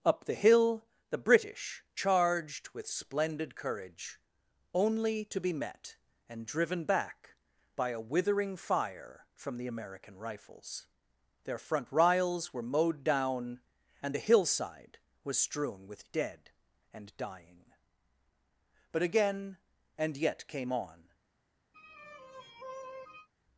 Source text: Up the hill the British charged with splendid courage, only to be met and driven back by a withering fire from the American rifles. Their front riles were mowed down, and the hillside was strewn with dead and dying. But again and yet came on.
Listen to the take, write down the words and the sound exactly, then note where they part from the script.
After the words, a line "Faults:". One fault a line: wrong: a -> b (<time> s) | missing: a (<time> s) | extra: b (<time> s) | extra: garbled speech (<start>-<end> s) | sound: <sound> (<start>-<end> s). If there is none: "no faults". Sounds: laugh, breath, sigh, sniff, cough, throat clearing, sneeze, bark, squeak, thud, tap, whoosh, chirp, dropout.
Up the hill the British charged with splendid courage, only to be met and driven back by a withering fire from the American rifles. Their front riles were mowed down, and the hillside was strewn with dead and dying. But again and yet came on.
Faults:
sound: sigh (21.7-23.3 s)